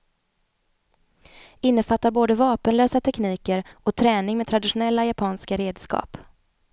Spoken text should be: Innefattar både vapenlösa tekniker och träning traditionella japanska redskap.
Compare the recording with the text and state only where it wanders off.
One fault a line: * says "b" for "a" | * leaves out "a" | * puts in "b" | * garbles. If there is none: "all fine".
* puts in "med"